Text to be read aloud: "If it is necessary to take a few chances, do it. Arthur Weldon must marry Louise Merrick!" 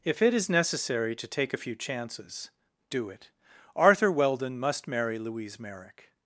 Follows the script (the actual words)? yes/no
yes